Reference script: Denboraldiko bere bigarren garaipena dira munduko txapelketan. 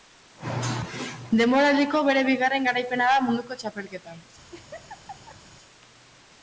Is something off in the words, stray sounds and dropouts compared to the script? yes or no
yes